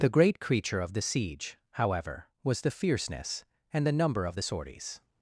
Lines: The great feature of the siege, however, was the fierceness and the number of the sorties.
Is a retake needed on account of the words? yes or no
yes